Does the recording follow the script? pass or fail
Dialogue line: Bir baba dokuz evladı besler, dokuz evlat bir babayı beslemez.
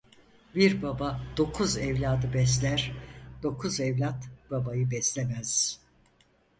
fail